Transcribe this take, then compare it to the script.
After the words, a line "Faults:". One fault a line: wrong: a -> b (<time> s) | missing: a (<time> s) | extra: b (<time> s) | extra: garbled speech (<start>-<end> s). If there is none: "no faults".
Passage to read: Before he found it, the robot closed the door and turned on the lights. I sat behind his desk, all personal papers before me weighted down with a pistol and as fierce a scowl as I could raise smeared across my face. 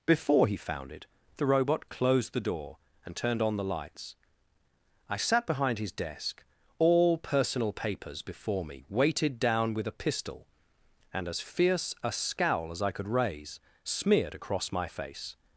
Before he found it, the robot closed the door and turned on the lights. I sat behind his desk, all personal papers before me weighted down with a pistol and as fierce a scowl as I could raise smeared across my face.
Faults:
no faults